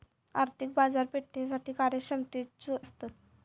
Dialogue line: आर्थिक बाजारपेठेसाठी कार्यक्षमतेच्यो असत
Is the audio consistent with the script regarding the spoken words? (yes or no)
yes